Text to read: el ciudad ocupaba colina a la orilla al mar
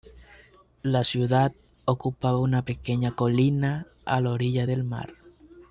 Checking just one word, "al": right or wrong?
wrong